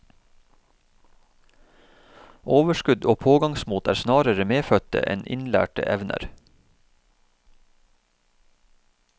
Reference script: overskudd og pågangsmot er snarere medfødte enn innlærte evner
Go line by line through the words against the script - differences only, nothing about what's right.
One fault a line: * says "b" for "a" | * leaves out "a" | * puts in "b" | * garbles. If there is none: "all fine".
all fine